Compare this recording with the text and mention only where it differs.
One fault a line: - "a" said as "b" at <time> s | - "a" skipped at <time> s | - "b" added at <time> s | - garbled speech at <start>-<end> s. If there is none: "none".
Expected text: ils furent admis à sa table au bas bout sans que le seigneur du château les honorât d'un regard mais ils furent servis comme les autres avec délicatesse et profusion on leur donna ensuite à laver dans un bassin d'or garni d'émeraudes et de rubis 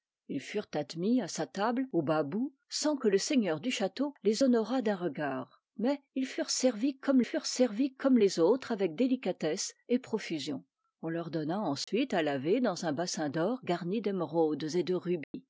- "furent servis comme" added at 7.2 s